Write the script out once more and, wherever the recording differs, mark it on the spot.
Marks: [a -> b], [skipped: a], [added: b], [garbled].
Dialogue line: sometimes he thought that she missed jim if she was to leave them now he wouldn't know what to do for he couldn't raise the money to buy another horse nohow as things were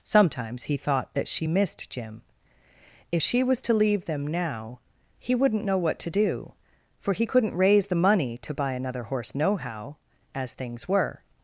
sometimes he thought that she missed jim if she was to leave them now he wouldn't know what to do for he couldn't raise the money to buy another horse nohow as things were